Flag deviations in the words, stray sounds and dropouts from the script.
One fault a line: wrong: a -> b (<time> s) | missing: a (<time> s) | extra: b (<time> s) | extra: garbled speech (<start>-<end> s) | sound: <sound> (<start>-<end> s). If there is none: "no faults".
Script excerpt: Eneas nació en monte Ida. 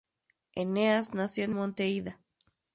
no faults